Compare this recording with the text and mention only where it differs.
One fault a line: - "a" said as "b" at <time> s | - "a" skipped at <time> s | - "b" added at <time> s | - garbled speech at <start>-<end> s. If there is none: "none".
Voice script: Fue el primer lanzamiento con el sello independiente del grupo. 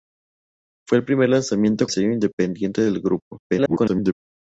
- "con el" skipped at 1.9 s
- garbled speech at 3.5-4.1 s